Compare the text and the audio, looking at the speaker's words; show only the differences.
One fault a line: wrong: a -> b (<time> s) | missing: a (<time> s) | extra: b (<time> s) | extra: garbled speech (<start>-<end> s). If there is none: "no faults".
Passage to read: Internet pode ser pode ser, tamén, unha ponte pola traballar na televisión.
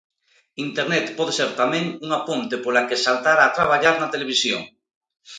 missing: pode ser (1.5 s)
extra: que saltar a (2.9 s)